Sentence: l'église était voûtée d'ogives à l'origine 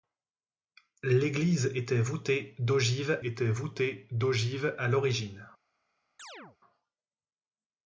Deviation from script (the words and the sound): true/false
true